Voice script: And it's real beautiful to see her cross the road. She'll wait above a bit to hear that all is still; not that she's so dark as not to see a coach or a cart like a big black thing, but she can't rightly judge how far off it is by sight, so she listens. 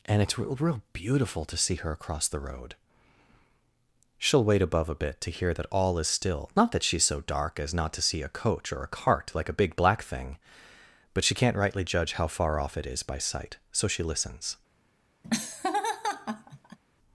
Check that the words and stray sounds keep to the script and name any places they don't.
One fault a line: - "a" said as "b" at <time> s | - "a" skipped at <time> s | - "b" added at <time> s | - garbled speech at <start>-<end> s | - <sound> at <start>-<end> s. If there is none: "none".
- "real" added at 0.6 s
- "cross" said as "across" at 1.9 s
- laugh at 15.2-16.8 s